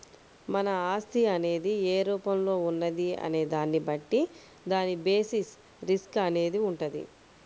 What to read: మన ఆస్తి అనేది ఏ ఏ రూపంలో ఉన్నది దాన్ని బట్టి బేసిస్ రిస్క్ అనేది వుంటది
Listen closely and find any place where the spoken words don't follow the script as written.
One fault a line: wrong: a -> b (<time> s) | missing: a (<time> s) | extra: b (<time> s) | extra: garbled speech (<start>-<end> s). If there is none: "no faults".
missing: ఏ (2.1 s)
extra: అనే (3.2 s)
extra: దాని (4.7 s)